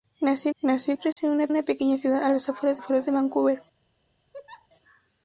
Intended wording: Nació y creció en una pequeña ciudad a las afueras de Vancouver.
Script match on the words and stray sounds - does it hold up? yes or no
no